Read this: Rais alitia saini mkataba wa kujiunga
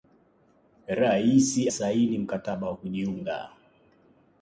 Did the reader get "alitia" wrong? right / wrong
wrong